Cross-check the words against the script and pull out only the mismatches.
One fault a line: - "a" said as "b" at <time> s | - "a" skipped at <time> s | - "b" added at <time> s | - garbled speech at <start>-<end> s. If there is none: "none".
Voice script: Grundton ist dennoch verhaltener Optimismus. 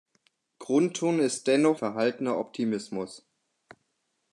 none